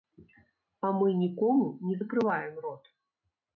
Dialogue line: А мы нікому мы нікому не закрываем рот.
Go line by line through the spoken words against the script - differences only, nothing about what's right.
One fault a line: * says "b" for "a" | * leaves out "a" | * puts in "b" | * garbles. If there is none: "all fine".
* leaves out "мы нікому"